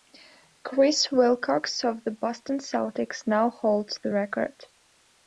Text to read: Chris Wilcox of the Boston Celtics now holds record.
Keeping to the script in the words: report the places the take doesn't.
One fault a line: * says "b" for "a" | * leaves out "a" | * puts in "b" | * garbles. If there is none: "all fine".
* puts in "the"